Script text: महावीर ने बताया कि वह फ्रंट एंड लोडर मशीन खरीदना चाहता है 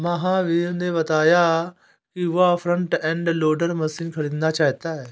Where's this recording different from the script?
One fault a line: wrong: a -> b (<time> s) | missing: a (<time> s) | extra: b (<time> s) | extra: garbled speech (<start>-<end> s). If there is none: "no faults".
no faults